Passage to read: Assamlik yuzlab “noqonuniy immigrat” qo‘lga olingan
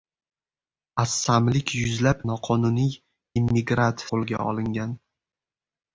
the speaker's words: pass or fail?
pass